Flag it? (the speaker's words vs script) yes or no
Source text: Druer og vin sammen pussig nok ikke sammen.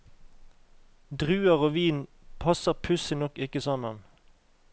yes